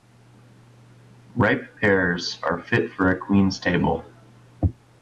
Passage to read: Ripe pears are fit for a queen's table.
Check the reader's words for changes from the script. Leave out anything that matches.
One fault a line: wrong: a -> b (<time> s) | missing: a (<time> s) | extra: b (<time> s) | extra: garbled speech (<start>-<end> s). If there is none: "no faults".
no faults